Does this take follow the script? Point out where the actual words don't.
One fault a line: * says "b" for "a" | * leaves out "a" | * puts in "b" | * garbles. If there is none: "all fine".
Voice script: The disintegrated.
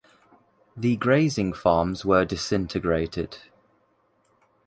* puts in "grazing farms were"